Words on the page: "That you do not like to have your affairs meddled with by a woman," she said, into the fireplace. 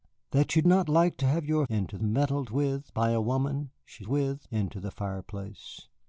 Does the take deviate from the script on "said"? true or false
true